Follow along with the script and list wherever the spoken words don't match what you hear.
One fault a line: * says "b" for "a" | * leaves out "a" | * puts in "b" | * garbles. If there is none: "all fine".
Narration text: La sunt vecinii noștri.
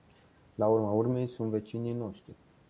* puts in "urma urmei"